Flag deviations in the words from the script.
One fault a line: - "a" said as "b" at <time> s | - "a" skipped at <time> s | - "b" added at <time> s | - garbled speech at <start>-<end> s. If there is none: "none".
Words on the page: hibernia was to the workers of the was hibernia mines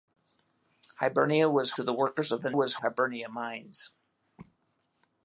none